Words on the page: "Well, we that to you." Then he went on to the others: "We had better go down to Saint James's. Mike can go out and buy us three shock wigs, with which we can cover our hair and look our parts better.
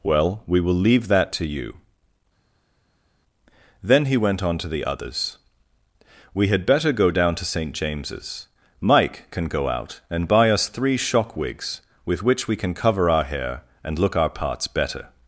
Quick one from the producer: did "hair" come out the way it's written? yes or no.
yes